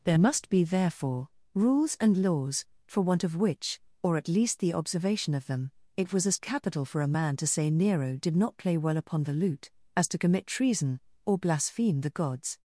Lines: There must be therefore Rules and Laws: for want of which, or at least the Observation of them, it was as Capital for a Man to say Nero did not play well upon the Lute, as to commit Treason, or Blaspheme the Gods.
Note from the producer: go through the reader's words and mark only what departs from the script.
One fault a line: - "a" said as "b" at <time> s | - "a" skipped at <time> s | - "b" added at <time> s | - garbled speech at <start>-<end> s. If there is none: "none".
none